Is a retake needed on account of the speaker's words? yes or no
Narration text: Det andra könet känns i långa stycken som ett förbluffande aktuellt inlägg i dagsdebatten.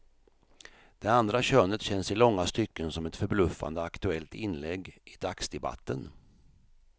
no